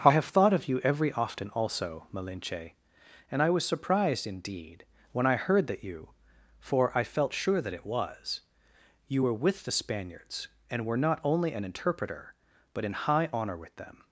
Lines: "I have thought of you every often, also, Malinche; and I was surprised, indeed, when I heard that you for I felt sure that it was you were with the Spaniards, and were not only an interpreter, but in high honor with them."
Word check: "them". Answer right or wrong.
right